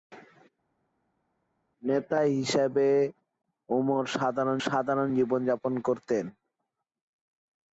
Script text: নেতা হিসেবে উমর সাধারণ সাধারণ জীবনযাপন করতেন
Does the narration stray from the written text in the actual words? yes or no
no